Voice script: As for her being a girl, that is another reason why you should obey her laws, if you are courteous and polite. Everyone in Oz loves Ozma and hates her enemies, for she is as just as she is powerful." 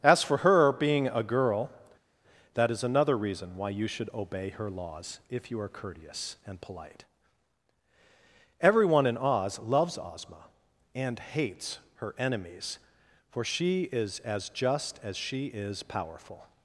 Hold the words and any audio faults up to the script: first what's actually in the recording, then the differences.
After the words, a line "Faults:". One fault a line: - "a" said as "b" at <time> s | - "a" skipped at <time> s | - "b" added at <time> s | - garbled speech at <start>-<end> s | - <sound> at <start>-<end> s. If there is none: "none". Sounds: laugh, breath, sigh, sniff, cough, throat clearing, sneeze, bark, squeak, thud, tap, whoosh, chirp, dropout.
As for her being a girl, that is another reason why you should obey her laws, if you are courteous and polite. Everyone in Oz loves Ozma and hates her enemies, for she is as just as she is powerful."
Faults:
none